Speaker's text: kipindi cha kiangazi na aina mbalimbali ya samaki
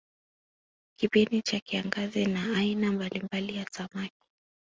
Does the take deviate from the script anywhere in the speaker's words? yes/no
no